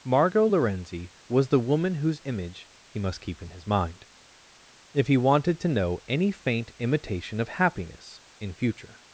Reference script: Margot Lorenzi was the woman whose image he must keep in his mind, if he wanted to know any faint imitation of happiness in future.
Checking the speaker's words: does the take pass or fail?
pass